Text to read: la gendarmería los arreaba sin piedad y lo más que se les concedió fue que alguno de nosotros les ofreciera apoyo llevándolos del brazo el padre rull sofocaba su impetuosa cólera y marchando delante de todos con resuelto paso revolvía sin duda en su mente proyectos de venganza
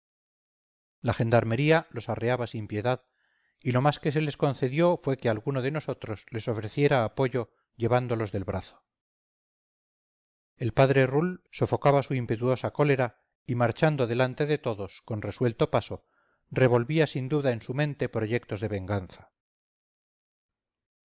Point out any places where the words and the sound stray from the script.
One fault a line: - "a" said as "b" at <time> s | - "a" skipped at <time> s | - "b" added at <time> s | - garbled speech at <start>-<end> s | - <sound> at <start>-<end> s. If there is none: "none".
none